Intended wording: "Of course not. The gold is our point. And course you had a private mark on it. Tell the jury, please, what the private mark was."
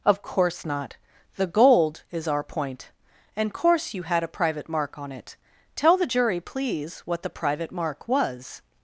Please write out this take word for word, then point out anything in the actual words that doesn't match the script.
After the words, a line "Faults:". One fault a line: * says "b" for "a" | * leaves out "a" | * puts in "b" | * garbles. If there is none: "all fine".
"Of course not. The gold is our point. And course you had a private mark on it. Tell the jury, please, what the private mark was."
Faults:
all fine